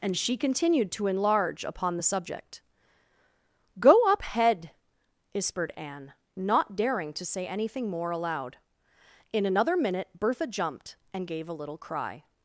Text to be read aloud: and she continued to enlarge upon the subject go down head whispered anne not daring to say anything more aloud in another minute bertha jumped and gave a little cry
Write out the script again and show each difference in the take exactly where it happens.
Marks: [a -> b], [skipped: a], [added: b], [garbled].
and she continued to enlarge upon the subject go [down -> up] head whispered anne not daring to say anything more aloud in another minute bertha jumped and gave a little cry